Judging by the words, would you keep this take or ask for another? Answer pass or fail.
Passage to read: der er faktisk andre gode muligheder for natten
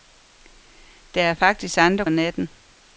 fail